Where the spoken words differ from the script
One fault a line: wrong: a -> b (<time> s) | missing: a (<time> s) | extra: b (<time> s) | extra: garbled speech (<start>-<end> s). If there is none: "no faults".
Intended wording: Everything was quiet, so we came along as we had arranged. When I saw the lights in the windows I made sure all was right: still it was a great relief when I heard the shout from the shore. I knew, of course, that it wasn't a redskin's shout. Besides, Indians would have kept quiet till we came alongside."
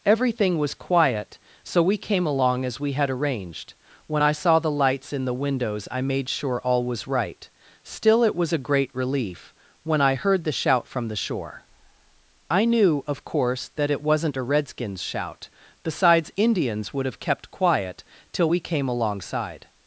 no faults